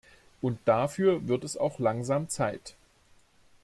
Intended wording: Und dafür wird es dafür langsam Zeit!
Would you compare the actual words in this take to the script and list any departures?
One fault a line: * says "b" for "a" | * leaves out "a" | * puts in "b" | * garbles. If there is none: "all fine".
* says "auch" for "dafür"